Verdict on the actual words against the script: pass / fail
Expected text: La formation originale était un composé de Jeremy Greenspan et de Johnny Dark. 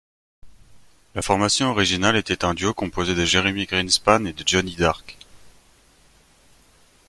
fail